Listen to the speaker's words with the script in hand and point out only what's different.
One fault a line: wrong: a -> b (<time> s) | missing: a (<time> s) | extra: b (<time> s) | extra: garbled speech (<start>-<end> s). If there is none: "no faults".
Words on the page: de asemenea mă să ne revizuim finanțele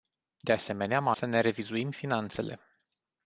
no faults